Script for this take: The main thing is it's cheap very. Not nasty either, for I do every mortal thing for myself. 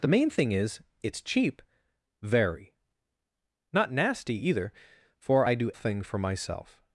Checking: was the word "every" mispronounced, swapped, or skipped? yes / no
yes